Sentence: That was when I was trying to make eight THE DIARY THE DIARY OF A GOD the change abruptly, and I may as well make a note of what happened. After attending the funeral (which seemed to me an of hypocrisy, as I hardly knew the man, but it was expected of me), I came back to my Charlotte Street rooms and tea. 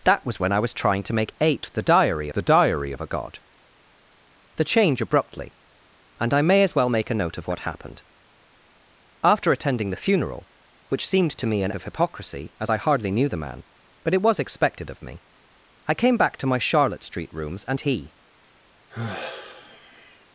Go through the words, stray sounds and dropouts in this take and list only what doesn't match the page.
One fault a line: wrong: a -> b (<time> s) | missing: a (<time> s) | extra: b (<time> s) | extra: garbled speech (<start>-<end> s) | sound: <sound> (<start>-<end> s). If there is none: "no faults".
sound: sigh (18.9-20.3 s)